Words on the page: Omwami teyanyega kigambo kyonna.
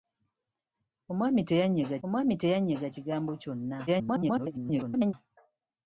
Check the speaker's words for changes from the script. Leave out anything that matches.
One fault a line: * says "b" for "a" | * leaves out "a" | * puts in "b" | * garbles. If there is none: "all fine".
* puts in "omwami teyanyega"
* garbles